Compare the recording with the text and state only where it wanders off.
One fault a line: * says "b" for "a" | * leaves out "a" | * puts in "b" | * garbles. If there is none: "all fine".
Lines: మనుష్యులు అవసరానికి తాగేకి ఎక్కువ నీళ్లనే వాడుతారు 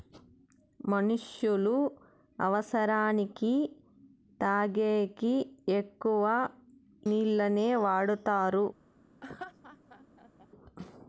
all fine